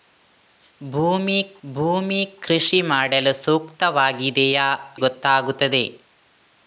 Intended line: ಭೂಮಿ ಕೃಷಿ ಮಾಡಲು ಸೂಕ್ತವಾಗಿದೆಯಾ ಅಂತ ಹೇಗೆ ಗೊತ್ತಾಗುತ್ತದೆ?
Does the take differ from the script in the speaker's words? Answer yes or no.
yes